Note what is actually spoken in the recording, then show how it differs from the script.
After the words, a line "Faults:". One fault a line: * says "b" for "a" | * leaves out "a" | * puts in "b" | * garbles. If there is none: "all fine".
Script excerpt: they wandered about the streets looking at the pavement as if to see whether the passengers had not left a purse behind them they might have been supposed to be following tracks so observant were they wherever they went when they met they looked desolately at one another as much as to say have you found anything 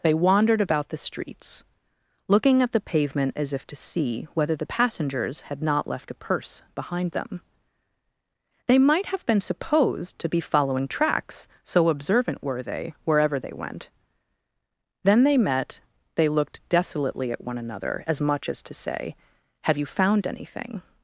they wandered about the streets looking at the pavement as if to see whether the passengers had not left a purse behind them they might have been supposed to be following tracks so observant were they wherever they went then they met they looked desolately at one another as much as to say have you found anything
Faults:
* says "then" for "when"